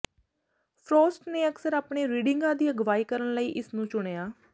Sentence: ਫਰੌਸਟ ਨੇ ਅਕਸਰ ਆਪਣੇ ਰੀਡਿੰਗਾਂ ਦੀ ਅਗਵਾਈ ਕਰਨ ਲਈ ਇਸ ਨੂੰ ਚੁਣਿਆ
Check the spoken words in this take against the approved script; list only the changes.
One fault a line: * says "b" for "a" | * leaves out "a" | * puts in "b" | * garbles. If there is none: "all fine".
all fine